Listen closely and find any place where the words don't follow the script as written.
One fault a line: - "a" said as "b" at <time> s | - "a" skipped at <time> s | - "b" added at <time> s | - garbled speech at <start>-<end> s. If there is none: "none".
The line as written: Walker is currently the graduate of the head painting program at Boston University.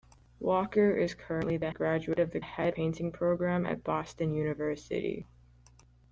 none